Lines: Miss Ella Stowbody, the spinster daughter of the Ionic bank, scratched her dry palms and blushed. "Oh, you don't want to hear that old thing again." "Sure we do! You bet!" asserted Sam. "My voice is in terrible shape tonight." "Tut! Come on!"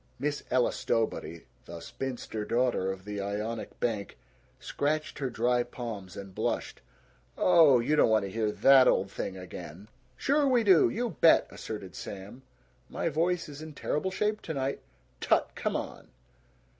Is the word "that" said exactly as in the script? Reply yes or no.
yes